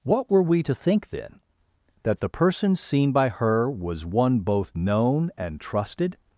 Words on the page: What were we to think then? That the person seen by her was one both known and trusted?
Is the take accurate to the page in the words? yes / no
yes